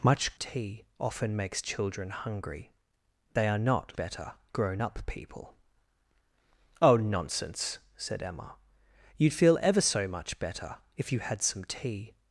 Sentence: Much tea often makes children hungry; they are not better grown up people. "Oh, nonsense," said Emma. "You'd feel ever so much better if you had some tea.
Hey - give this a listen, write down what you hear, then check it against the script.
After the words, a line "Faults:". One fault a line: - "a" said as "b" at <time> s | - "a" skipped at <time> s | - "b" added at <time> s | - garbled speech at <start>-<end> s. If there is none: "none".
Much tea often makes children hungry; they are not better grown up people. "Oh, nonsense," said Emma. "You'd feel ever so much better if you had some tea.
Faults:
none